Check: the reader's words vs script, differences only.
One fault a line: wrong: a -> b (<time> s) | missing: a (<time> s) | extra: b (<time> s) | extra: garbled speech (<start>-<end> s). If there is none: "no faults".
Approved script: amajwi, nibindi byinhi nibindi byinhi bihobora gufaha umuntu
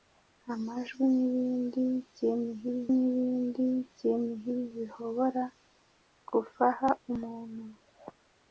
no faults